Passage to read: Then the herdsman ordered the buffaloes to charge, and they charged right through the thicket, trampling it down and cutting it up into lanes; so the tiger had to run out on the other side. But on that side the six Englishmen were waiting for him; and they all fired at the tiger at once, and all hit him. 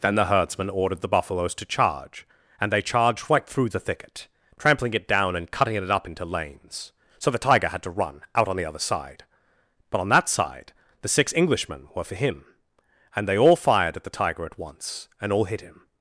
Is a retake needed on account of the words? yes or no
yes